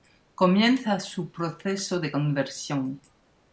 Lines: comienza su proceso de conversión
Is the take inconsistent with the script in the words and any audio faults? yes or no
no